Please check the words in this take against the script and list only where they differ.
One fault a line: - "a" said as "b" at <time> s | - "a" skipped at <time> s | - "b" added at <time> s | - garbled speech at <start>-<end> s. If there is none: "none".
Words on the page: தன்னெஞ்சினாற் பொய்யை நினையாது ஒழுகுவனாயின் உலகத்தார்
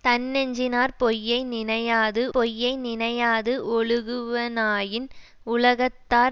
- "பொய்யை நினையாது" added at 2.3 s